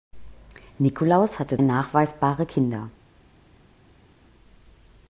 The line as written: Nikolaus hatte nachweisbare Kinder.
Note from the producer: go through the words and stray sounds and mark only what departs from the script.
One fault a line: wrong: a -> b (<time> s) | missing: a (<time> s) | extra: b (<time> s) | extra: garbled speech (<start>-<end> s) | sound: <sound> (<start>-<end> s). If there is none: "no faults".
no faults